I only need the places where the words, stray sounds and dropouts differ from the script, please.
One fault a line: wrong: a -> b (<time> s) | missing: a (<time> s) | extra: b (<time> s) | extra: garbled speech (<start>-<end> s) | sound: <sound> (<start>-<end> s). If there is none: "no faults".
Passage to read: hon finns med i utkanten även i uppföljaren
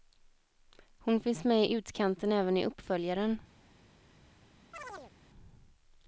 sound: chirp (4.7-5.1 s)